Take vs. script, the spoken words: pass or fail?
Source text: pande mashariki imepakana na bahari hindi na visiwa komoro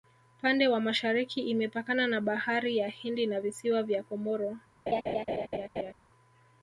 fail